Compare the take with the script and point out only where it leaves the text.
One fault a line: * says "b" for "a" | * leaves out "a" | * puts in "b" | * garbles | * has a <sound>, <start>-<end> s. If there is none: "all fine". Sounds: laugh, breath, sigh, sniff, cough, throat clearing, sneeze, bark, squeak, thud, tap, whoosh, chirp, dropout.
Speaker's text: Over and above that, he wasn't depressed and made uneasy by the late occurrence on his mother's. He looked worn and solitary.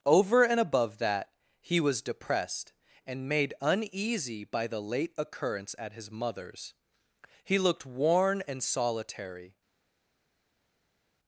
* says "was" for "wasn't"
* says "at" for "on"